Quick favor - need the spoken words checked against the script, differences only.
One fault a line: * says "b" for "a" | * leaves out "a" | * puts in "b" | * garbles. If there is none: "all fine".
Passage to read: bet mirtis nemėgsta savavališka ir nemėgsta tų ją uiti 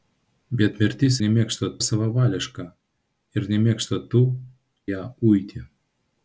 all fine